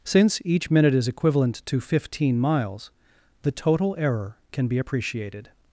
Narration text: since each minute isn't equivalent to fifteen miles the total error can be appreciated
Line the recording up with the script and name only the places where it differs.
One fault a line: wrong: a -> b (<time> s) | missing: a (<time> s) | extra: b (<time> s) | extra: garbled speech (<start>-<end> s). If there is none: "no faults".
wrong: isn't -> is (0.9 s)